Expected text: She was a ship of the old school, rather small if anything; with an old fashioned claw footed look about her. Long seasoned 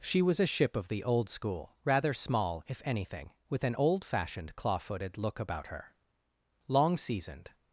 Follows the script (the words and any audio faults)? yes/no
yes